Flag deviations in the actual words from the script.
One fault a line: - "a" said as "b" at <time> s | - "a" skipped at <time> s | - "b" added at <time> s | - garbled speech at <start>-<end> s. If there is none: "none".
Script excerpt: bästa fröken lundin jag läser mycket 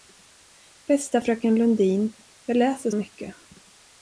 none